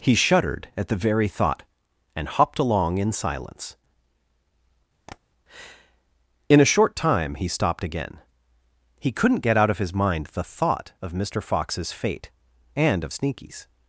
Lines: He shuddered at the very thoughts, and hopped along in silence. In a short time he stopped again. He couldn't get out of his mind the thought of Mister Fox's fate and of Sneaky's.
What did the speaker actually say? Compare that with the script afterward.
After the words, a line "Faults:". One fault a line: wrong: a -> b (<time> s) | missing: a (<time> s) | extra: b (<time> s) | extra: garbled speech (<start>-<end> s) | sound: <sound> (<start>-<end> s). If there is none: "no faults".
He shuddered at the very thought, and hopped along in silence. In a short time he stopped again. He couldn't get out of his mind the thought of Mister Fox's fate and of Sneaky's.
Faults:
wrong: thoughts -> thought (1.3 s)
sound: tap (5.1-5.2 s)